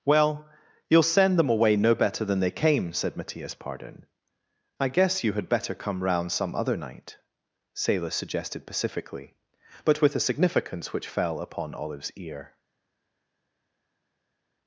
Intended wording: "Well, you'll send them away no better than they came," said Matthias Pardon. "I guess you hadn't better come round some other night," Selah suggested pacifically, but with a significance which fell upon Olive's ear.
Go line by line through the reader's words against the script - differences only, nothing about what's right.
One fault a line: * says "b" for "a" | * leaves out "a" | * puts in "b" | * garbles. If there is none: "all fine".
* says "had" for "hadn't"